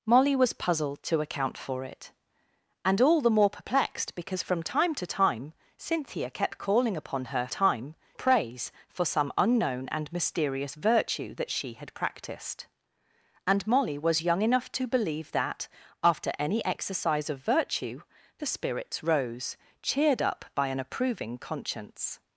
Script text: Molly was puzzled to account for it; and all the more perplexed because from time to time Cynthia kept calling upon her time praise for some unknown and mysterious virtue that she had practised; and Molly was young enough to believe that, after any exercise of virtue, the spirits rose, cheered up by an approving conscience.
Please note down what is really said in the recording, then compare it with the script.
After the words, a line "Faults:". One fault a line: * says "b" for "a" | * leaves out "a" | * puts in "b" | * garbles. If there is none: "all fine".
Molly was puzzled to account for it; and all the more perplexed because from time to time Cynthia kept calling upon her time praise for some unknown and mysterious virtue that she had practised; and Molly was young enough to believe that, after any exercise of virtue, the spirits rose, cheered up by an approving conscience.
Faults:
all fine